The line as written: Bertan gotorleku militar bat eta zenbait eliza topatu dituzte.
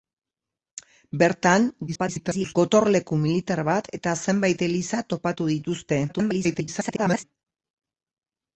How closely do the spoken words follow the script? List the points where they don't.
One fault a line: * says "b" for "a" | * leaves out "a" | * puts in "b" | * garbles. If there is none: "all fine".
* garbles
* garbles